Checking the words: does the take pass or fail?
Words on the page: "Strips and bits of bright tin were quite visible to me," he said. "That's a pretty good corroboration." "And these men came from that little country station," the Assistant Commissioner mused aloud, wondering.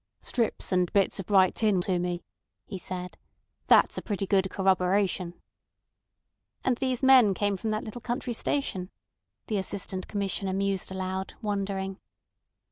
fail